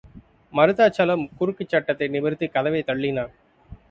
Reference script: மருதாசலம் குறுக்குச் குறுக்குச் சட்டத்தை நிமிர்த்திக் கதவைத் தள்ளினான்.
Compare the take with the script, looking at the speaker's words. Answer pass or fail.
fail